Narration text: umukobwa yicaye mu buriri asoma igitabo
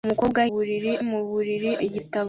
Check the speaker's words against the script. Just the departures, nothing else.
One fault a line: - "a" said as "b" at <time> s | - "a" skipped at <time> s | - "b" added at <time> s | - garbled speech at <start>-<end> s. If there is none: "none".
- "yicaye" said as "buriri" at 0.5 s
- "asoma" skipped at 1.7 s